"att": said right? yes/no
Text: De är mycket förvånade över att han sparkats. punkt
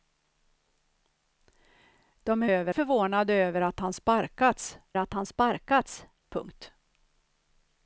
yes